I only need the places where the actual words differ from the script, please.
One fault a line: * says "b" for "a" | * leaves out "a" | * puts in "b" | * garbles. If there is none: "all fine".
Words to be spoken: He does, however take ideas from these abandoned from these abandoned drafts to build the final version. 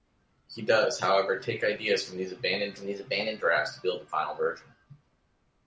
all fine